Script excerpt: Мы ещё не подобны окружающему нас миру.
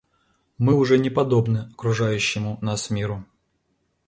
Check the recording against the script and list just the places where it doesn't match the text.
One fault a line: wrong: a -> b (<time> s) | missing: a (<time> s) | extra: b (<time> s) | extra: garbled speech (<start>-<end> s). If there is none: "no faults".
wrong: ещё -> уже (0.7 s)